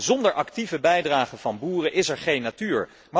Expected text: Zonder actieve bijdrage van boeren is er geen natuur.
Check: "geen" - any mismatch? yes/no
no